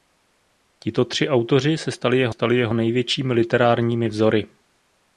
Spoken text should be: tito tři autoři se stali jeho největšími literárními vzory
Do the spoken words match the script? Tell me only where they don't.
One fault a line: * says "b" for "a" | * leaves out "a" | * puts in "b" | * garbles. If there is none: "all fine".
* puts in "stali jeho"